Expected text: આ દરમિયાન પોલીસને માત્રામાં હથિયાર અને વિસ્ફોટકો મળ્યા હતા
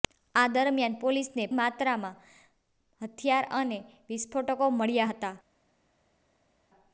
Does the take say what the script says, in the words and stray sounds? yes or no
yes